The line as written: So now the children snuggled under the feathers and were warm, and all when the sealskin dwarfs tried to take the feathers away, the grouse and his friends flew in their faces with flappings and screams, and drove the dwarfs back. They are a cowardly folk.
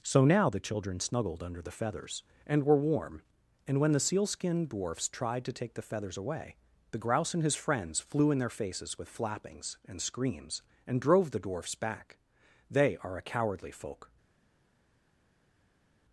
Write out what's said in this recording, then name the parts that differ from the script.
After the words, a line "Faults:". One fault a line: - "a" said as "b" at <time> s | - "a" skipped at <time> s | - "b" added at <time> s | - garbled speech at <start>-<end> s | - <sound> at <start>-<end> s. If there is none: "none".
So now the children snuggled under the feathers and were warm, and when the sealskin dwarfs tried to take the feathers away, the grouse and his friends flew in their faces with flappings and screams, and drove the dwarfs back. They are a cowardly folk.
Faults:
- "all" skipped at 3.8 s